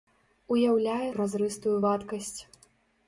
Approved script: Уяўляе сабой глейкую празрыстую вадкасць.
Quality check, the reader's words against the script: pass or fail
fail